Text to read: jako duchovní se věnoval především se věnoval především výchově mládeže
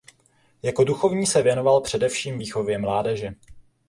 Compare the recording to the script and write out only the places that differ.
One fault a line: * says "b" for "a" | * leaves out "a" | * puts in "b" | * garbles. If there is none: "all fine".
* leaves out "se věnoval především"